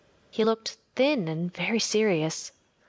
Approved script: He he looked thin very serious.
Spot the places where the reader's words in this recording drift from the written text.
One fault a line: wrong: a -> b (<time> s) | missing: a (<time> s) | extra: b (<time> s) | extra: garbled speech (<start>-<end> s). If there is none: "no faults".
missing: he (0.4 s)
extra: and (1.3 s)